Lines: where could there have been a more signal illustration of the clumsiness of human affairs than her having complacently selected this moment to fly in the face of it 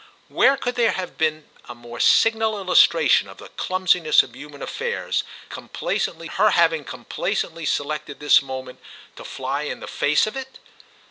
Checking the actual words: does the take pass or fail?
fail